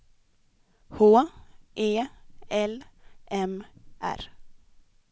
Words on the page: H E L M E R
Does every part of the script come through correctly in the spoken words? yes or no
no